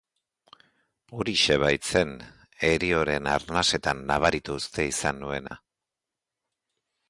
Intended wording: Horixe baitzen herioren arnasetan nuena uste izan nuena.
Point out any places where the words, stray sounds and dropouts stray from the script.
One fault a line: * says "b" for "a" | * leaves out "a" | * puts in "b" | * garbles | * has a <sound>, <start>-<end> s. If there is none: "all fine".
* says "nabaritu" for "nuena"
* has a dropout, 5.5-5.5 s